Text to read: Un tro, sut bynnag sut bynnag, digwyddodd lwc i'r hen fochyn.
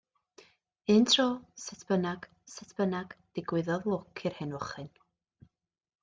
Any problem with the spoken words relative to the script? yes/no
no